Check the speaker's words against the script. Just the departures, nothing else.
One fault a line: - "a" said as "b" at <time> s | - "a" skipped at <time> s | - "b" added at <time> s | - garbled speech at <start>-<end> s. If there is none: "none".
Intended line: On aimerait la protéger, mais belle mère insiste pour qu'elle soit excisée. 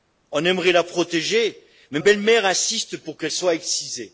none